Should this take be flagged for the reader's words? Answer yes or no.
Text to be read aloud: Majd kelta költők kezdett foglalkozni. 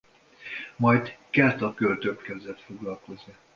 no